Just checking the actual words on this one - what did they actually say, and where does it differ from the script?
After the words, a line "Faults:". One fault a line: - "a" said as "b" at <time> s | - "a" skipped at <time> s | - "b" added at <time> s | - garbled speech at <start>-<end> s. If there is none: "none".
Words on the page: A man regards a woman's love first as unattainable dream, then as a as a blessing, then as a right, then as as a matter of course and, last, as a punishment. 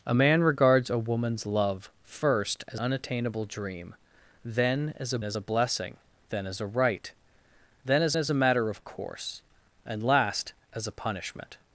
A man regards a woman's love first as unattainable dream, then as a as a blessing, then as a right, then as as a matter of course and, last, as a punishment.
Faults:
none